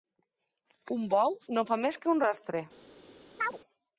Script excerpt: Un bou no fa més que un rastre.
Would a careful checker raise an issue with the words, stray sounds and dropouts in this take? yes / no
yes